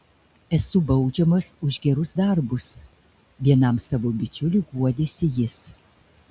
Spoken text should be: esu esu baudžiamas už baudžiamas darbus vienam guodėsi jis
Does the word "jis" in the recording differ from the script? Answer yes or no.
no